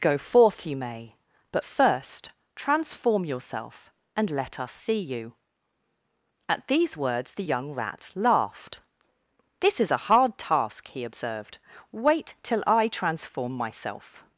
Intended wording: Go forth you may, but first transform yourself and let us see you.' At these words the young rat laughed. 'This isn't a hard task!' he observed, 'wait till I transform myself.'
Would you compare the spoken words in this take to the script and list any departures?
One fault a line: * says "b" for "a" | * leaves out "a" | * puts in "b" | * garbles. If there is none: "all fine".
* says "is" for "isn't"